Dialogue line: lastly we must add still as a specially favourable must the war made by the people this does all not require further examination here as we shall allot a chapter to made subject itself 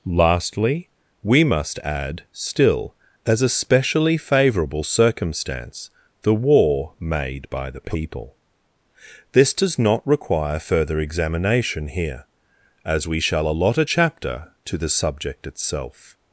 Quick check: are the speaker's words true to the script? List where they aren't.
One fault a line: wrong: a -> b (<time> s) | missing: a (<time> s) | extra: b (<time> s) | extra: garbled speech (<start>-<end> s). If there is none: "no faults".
wrong: must -> circumstance (4.8 s)
missing: all (9.8 s)
wrong: made -> the (14.8 s)